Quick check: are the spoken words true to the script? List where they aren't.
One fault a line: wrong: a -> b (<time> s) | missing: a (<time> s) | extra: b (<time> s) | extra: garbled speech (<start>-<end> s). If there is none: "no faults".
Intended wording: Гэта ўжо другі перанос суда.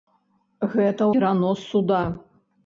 missing: ўжо другі (1.1 s)